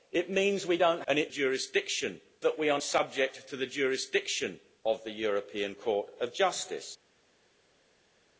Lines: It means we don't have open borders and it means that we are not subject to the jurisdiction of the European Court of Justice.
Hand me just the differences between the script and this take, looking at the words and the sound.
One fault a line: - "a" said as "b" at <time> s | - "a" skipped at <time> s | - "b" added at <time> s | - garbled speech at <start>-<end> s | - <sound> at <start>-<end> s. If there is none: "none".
- "have open borders" skipped at 1.0 s
- "means" said as "jurisdiction" at 1.3 s
- "not" skipped at 2.8 s